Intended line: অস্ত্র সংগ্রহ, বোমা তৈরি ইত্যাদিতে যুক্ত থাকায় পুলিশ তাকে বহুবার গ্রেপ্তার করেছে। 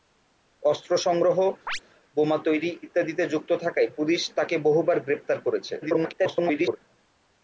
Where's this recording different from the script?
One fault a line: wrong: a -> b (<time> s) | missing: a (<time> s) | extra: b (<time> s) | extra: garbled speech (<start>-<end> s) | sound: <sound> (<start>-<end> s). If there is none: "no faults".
sound: chirp (1.7-1.8 s)
extra: garbled speech (5.8-6.8 s)